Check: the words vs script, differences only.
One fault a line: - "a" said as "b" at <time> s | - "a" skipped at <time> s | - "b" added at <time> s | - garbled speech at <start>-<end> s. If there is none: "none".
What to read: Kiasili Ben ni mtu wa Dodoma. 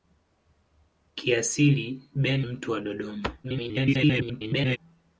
- "ni" skipped at 2.4 s
- garbled speech at 3.4-4.8 s